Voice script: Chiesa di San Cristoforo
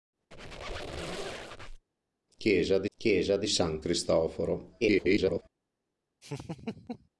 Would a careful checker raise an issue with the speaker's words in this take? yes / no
yes